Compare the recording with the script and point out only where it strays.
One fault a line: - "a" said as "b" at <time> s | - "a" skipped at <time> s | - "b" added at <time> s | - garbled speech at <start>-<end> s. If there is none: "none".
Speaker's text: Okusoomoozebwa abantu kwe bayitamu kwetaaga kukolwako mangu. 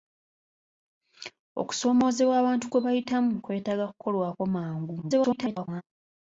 - garbled speech at 5.0-5.8 s